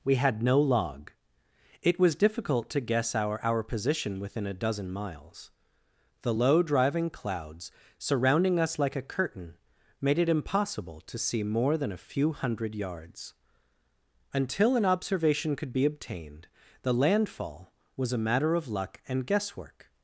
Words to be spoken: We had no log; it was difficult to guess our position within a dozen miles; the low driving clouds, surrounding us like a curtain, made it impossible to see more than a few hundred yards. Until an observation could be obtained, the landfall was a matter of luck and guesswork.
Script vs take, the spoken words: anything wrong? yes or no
yes